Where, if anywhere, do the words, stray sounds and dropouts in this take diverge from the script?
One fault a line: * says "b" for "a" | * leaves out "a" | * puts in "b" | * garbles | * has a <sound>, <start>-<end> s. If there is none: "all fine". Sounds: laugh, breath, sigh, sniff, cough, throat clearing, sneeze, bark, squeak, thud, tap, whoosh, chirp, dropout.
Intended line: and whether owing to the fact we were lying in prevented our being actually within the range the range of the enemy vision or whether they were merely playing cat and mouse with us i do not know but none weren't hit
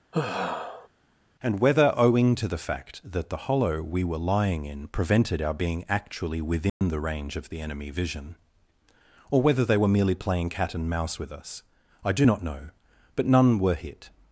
* has a sigh, 0.1-0.9 s
* puts in "that the hollow"
* has a dropout, 6.7-6.8 s
* leaves out "the range"
* says "were" for "weren't"